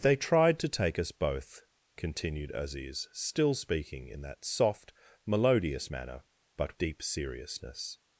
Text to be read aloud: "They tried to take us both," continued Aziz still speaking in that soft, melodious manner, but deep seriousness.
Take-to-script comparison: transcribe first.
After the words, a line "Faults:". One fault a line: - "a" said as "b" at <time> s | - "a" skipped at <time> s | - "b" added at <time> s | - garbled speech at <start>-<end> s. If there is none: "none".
"They tried to take us both," continued Aziz still speaking in that soft, melodious manner, but deep seriousness.
Faults:
none